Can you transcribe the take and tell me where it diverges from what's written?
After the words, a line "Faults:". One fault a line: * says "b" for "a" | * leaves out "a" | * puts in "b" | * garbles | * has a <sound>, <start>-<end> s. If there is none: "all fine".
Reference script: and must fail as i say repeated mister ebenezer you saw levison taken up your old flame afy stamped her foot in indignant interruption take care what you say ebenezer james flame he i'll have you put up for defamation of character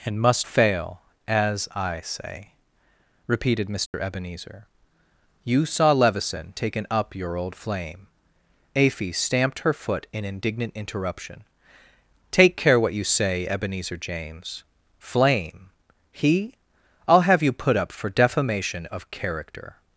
and must fail as i say repeated mister ebenezer you saw levison taken up your old flame afy stamped her foot in indignant interruption take care what you say ebenezer james flame he i'll have you put up for defamation of character
Faults:
* has a dropout, 3.9-3.9 s